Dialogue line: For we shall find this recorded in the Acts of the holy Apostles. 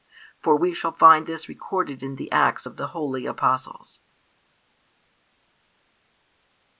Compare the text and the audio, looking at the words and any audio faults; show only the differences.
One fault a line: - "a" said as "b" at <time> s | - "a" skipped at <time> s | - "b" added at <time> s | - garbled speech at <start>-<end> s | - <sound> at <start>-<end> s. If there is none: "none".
none